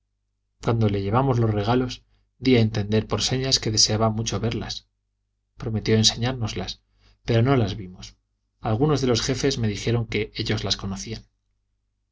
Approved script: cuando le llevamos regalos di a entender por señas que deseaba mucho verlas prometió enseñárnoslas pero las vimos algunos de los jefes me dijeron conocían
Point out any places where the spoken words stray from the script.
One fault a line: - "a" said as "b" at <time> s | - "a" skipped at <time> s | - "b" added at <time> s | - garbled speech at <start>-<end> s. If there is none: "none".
- "los" added at 1.4 s
- "no" added at 7.4 s
- "que ellos las" added at 10.1 s